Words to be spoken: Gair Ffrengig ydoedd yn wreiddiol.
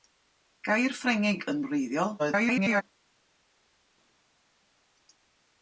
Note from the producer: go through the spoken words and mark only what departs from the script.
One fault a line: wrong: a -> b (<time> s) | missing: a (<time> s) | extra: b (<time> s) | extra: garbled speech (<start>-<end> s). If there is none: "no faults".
missing: ydoedd (1.4 s)
extra: garbled speech (2.2-2.8 s)